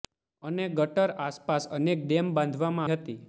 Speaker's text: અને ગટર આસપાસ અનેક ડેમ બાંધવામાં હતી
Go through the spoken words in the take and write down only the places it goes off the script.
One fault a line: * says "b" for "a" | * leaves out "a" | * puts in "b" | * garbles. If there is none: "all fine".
all fine